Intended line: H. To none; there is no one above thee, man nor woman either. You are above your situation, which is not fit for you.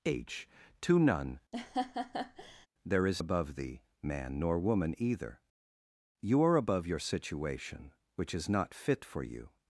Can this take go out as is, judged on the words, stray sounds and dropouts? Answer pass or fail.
fail